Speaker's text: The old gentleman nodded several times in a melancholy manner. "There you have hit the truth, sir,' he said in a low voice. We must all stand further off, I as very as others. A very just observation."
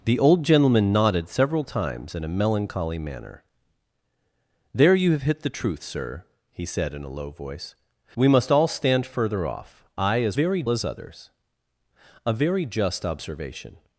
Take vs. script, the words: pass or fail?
pass